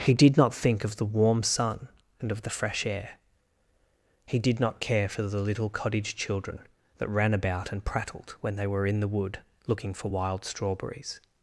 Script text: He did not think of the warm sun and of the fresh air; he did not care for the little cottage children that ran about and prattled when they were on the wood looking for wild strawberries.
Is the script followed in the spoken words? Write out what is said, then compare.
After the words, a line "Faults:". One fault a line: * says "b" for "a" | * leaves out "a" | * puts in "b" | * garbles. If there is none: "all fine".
He did not think of the warm sun and of the fresh air; he did not care for the little cottage children that ran about and prattled when they were in the wood looking for wild strawberries.
Faults:
* says "in" for "on"